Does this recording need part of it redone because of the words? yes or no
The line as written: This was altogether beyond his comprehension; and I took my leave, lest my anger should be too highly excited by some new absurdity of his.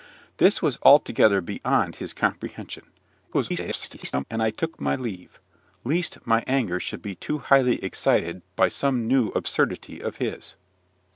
yes